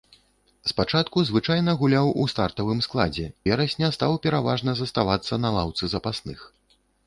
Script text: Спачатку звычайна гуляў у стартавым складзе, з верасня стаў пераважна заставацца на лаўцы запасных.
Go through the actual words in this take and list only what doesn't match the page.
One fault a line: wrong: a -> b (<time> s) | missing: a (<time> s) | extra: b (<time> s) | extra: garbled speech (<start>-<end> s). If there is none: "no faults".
missing: з (3.3 s)